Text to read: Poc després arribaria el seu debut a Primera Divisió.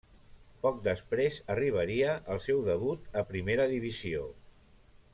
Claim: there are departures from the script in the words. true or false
false